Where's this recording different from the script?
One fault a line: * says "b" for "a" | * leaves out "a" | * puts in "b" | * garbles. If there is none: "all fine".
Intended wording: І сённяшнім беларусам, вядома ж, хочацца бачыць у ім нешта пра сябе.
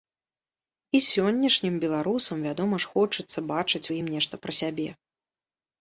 all fine